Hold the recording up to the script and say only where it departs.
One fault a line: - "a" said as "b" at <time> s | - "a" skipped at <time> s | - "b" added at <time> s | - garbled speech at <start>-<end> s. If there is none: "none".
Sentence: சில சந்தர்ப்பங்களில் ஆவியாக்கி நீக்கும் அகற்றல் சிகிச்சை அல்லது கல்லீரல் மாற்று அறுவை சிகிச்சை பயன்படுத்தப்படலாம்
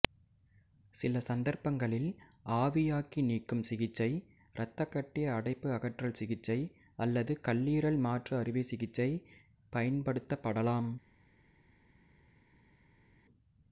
- "சிகிச்சை இரத்தக்கட்டி அடைப்பு" added at 3.7 s